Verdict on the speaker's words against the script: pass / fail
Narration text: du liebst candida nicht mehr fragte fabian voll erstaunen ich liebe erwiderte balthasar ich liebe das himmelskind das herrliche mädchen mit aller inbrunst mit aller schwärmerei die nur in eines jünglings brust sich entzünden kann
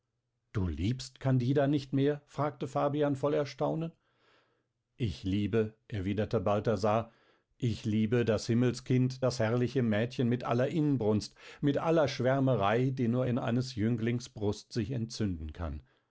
pass